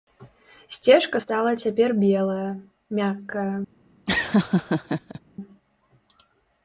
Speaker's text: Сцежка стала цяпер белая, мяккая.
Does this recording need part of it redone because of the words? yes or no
no